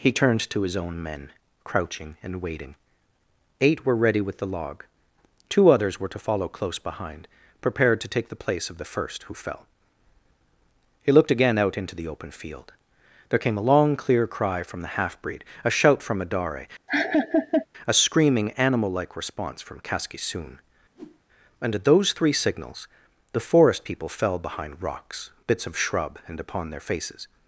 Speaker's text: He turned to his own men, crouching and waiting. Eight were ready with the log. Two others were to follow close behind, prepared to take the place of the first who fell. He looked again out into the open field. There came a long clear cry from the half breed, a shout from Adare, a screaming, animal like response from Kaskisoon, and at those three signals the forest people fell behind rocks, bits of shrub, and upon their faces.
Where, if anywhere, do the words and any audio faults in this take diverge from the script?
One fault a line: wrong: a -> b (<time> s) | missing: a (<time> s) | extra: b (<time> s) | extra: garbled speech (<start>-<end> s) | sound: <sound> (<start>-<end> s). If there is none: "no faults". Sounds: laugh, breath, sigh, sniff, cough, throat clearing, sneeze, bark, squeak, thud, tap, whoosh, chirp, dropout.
sound: laugh (16.9-17.7 s)
sound: whoosh (20.9-21.2 s)